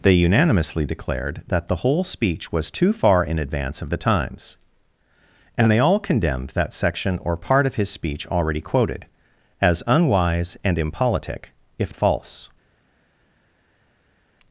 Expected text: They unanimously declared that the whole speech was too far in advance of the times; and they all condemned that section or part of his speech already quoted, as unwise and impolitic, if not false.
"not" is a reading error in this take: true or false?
true